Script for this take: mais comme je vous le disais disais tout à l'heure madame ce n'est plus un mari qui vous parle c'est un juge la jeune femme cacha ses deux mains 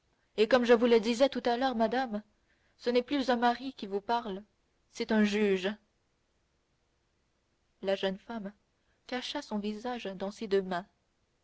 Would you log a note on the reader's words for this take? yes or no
yes